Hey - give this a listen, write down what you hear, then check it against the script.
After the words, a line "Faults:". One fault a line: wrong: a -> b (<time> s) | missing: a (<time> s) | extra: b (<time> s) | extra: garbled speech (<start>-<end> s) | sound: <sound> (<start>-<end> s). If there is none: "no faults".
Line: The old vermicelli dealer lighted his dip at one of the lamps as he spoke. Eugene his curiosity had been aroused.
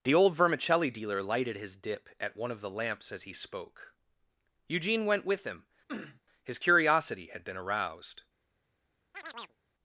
The old vermicelli dealer lighted his dip at one of the lamps as he spoke. Eugene went with him, his curiosity had been aroused.
Faults:
extra: went with him (5.0 s)
sound: sniff (5.9-6.2 s)
sound: chirp (9.1-9.6 s)